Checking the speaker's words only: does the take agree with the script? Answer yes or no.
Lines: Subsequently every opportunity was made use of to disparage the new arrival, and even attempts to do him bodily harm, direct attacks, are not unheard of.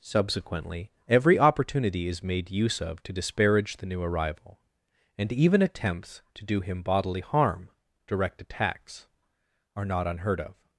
no